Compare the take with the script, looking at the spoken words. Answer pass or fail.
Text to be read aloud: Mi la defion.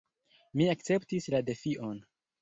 fail